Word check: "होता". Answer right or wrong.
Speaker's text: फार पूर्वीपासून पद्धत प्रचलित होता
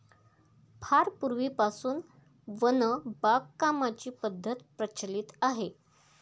wrong